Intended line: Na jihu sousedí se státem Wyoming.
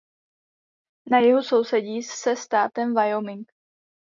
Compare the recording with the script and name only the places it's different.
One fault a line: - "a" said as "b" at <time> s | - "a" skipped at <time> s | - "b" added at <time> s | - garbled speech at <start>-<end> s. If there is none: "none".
none